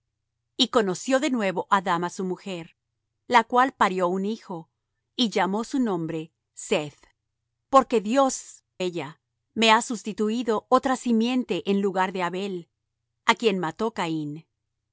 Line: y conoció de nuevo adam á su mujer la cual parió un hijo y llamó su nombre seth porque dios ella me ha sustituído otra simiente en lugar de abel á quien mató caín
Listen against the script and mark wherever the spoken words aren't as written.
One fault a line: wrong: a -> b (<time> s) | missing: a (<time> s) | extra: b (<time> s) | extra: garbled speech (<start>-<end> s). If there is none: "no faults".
no faults